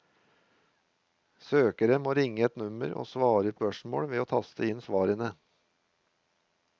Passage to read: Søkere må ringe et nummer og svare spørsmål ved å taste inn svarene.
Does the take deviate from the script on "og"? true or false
false